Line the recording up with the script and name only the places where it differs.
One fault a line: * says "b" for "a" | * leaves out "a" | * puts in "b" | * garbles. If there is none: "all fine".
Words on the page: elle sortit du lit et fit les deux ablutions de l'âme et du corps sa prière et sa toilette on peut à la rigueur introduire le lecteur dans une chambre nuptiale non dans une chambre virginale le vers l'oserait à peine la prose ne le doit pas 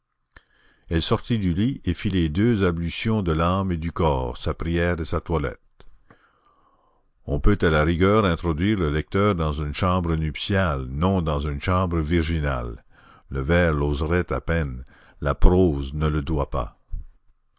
all fine